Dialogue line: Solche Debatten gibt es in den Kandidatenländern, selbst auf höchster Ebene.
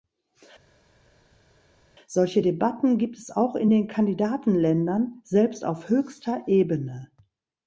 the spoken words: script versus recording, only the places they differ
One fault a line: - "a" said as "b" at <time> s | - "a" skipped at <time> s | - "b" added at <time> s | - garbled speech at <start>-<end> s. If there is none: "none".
- "auch" added at 3.3 s